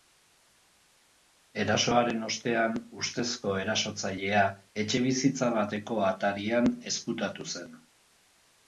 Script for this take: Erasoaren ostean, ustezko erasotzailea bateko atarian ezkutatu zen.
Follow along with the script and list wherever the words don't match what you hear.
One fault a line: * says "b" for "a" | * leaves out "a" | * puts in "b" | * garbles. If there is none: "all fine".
* puts in "etxebizitza"